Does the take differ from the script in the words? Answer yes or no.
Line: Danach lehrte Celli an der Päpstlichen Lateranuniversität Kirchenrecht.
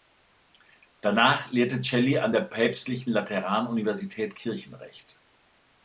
no